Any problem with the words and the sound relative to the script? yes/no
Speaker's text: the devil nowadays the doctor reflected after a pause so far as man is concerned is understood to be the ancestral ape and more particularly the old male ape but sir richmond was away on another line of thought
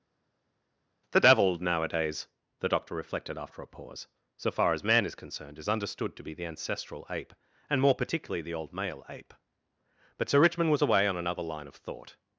no